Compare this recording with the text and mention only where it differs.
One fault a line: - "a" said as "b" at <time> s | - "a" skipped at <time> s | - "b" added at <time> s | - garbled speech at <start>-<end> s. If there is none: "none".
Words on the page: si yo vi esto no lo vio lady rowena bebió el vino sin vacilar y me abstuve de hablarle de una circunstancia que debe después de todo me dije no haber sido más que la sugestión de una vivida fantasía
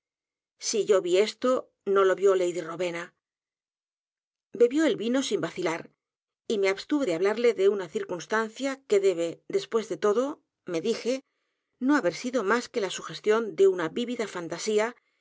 none